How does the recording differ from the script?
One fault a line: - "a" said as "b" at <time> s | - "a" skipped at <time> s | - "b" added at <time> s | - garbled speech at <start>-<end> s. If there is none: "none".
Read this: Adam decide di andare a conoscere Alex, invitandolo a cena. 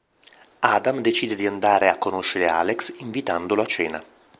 none